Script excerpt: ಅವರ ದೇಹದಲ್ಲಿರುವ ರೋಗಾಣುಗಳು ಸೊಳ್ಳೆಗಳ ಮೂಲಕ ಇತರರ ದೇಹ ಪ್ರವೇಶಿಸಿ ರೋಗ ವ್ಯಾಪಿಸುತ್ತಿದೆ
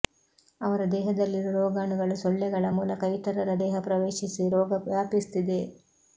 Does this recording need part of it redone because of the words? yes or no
no